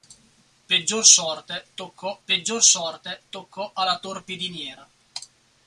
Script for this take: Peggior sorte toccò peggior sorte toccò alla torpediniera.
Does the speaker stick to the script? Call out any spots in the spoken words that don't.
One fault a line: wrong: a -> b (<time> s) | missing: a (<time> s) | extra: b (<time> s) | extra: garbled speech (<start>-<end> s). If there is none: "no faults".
no faults